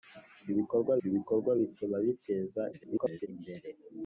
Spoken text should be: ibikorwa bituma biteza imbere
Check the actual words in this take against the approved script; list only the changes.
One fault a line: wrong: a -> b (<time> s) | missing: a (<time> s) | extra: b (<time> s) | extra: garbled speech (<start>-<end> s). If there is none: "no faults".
extra: ibikorwa (1.1 s)
extra: garbled speech (2.7-3.3 s)